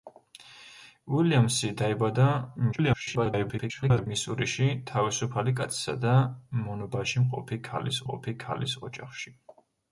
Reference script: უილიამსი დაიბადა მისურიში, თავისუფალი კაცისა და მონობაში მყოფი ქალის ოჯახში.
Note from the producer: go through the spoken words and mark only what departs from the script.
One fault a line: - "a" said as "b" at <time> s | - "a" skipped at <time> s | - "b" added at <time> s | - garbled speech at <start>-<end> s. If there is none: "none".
- garbled speech at 2.7-4.1 s
- "მყოფი ქალის" added at 8.0 s